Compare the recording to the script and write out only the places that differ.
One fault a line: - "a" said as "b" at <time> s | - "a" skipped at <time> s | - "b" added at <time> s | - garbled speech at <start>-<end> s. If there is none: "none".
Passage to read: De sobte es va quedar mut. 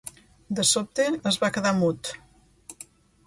none